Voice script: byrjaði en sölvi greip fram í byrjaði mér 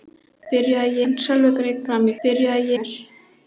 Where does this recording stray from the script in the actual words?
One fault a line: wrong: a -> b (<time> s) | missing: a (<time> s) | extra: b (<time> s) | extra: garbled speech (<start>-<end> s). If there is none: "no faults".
no faults